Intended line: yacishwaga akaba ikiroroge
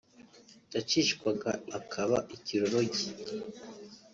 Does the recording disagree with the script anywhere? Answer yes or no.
no